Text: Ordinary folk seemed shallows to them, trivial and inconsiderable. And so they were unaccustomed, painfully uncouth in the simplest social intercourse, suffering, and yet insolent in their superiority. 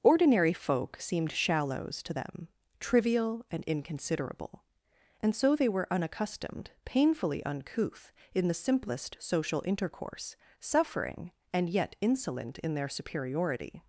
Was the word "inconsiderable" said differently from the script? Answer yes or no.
no